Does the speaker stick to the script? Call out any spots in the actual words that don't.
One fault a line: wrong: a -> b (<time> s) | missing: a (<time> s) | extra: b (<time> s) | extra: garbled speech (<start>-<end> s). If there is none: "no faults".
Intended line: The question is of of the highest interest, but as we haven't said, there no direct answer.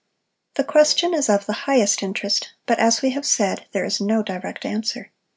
missing: of (1.4 s)
wrong: haven't -> have (3.1 s)
extra: is (3.8 s)